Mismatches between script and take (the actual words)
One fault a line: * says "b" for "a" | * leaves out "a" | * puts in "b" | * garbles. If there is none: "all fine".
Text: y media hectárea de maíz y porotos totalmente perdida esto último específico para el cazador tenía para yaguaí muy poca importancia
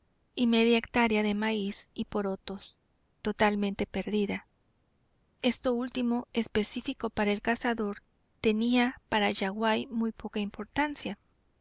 all fine